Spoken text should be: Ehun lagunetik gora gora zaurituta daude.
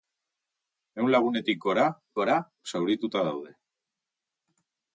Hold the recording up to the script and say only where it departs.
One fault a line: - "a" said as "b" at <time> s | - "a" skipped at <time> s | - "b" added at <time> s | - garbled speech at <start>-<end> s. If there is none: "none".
none